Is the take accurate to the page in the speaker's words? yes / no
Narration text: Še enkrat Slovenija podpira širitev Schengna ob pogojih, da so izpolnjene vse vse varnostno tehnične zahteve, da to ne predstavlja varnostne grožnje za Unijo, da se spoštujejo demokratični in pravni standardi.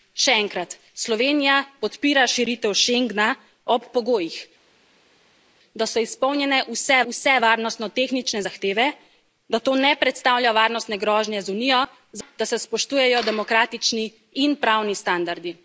yes